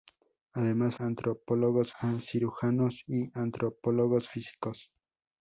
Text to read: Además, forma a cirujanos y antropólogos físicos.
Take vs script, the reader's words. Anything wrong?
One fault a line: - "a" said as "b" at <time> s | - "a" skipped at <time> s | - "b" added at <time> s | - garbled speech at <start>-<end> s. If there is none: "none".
- "forma" said as "antropólogos" at 1.0 s